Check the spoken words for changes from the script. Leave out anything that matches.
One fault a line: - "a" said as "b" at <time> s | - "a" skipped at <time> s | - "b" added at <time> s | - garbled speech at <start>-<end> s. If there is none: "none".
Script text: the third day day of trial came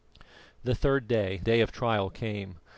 none